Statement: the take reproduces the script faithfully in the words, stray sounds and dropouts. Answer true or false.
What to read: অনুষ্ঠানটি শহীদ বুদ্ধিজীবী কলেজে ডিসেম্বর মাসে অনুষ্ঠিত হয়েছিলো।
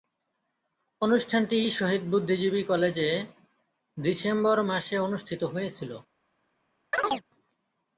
false